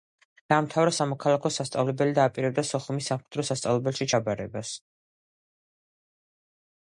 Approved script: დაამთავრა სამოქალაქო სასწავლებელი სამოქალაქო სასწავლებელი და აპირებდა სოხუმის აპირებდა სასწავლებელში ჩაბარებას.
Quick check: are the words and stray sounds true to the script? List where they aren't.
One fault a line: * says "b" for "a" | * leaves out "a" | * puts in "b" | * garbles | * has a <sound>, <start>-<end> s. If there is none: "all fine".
* leaves out "სამოქალაქო სასწავლებელი"
* says "სამხედრო" for "აპირებდა"